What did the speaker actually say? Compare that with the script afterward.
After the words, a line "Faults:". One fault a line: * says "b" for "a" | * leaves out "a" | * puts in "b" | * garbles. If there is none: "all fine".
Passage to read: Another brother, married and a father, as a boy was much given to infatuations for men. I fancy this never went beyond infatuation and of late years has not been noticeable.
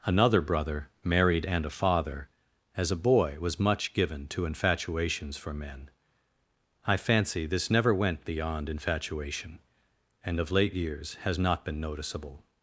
Another brother, married and a father, as a boy was much given to infatuations for men. I fancy this never went beyond infatuation and of late years has not been noticeable.
Faults:
all fine